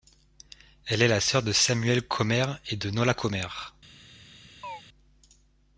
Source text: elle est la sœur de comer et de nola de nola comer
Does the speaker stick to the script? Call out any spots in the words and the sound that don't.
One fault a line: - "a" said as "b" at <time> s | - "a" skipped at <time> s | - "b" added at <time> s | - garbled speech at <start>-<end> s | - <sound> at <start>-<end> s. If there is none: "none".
- "samuel" added at 1.5 s
- "de nola" skipped at 3.1 s
- chirp at 4.6-4.8 s